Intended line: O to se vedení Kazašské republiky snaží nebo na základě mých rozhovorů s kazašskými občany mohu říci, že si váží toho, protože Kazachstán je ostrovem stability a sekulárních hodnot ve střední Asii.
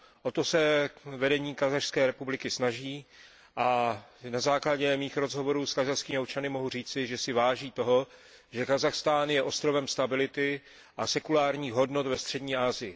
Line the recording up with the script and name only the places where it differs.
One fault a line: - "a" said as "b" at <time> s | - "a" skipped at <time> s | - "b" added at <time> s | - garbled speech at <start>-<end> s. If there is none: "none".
- "nebo" said as "a" at 3.5 s
- "protože" said as "že" at 8.5 s